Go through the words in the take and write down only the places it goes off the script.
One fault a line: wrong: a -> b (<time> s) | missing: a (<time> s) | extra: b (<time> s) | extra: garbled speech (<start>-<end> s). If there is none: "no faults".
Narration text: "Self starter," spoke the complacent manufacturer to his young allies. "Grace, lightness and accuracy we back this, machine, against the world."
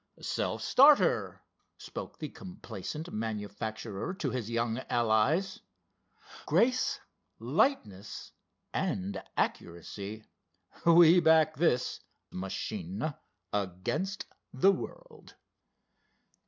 no faults